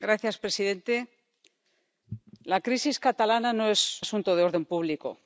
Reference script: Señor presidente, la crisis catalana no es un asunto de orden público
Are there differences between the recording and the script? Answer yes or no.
yes